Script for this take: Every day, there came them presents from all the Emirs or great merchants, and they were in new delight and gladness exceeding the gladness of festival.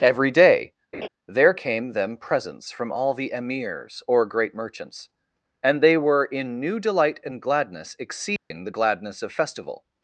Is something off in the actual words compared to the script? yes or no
no